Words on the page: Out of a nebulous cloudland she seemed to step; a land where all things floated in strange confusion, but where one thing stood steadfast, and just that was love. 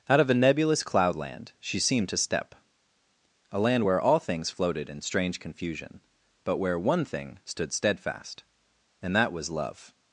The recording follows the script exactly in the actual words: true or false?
false